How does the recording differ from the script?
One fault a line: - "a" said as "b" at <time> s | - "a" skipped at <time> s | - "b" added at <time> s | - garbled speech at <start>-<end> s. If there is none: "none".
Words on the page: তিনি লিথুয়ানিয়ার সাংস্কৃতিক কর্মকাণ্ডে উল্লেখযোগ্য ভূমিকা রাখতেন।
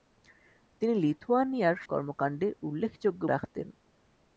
- "সাংস্কৃতিক" skipped at 1.8 s
- "ভূমিকা" skipped at 3.2 s